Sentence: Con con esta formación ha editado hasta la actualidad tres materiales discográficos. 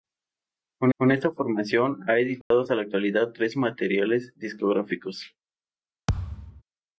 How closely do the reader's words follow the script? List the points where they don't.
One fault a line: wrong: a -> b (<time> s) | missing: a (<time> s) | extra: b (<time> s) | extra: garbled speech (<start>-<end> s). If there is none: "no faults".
no faults